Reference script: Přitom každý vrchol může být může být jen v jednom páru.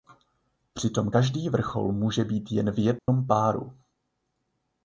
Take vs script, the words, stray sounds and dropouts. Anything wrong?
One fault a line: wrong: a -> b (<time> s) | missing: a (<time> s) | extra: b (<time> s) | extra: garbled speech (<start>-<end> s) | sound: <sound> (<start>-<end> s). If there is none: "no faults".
missing: může být (2.5 s)
sound: dropout (3.0-3.1 s)